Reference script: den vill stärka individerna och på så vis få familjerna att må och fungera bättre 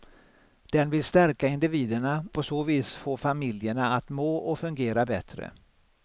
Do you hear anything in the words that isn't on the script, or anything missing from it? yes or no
yes